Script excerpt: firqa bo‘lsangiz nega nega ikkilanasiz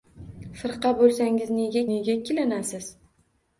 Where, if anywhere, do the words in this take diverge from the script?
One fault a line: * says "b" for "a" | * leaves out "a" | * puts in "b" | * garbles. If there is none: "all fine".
all fine